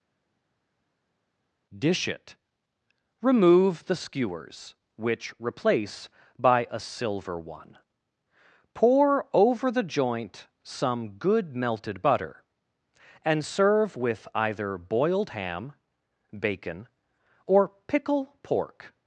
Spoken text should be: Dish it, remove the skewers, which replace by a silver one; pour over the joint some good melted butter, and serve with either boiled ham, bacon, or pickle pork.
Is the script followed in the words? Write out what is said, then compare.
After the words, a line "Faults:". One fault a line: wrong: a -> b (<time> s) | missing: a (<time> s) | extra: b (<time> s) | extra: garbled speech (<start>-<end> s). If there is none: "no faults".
Dish it, remove the skewers, which replace by a silver one; pour over the joint some good melted butter, and serve with either boiled ham, bacon, or pickle pork.
Faults:
no faults